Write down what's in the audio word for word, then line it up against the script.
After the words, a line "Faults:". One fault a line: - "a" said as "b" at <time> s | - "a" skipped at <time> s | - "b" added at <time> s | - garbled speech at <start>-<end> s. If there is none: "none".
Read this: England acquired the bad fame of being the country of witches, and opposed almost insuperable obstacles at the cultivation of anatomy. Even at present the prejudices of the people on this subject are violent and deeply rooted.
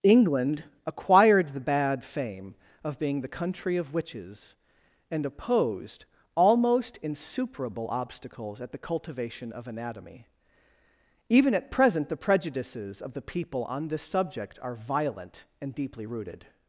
England acquired the bad fame of being the country of witches, and opposed almost insuperable obstacles at the cultivation of anatomy. Even at present the prejudices of the people on this subject are violent and deeply rooted.
Faults:
none